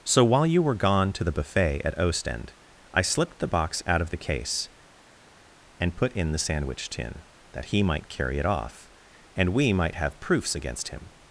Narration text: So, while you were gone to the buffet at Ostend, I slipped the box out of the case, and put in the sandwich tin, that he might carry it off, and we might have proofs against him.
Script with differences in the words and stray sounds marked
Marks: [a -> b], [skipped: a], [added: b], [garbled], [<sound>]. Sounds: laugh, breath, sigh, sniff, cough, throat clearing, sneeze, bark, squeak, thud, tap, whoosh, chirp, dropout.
So, while you were gone to the buffet at Ostend, I slipped the box out of the case, and put in the sandwich tin, that he might carry it off, and we might have proofs against him.